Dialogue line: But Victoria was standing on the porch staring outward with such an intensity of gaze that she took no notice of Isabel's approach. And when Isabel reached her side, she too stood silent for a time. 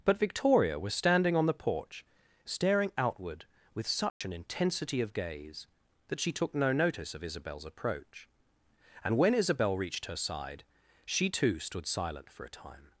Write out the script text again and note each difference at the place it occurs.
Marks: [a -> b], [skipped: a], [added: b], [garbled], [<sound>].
But Victoria was standing on the porch staring outward with such [dropout] an intensity of gaze that she took no notice of Isabel's approach. And when Isabel reached her side, she too stood silent for a time.